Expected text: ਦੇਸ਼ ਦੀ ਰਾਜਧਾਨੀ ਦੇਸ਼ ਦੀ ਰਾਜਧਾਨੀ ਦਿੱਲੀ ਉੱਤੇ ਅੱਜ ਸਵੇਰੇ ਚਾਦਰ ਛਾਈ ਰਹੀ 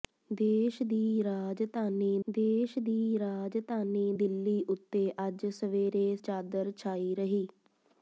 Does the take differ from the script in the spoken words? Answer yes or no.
no